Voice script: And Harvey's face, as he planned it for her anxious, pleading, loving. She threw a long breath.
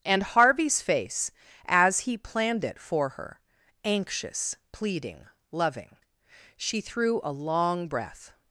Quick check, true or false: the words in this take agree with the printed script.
true